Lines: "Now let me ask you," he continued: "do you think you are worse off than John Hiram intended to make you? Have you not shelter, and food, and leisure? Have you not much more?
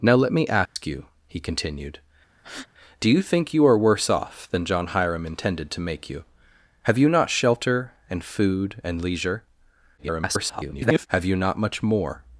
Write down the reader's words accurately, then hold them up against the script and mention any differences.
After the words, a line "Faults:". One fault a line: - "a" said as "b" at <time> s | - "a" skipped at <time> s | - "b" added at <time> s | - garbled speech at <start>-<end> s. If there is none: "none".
"Now let me ask you," he continued: "do you think you are worse off than John Hiram intended to make you? Have you not shelter, and food, and leisure? [garbled] Have you not much more?
Faults:
- garbled speech at 10.0-11.1 s